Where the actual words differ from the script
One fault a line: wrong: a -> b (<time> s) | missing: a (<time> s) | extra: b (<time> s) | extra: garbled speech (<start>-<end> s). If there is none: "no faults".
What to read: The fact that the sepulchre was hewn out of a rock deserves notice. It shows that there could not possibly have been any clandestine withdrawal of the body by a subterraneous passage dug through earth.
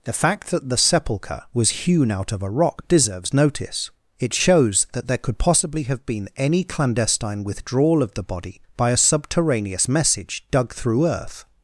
missing: not (5.4 s)
wrong: passage -> message (9.9 s)